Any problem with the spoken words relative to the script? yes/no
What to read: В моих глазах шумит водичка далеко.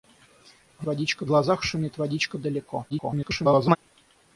yes